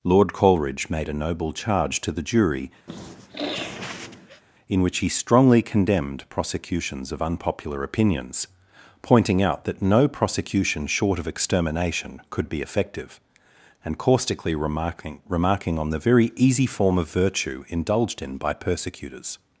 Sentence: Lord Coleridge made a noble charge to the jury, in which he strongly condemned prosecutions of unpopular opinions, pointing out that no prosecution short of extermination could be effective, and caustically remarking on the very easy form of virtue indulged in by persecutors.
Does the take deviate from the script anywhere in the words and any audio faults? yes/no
yes